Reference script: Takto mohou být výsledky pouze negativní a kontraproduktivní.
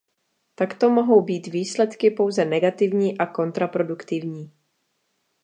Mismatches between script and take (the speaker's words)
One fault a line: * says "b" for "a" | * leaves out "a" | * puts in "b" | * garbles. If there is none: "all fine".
all fine